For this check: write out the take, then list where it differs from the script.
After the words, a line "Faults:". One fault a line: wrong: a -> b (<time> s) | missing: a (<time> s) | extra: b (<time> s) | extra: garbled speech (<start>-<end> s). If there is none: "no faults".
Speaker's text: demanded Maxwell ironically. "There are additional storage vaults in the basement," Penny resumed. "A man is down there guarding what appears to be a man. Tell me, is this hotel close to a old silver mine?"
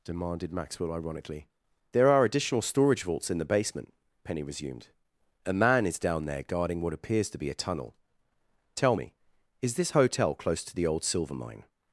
demanded Maxwell ironically. "There are additional storage vaults in the basement," Penny resumed. "A man is down there guarding what appears to be a tunnel. Tell me, is this hotel close to the old silver mine?"
Faults:
wrong: man -> tunnel (7.5 s)
wrong: a -> the (10.7 s)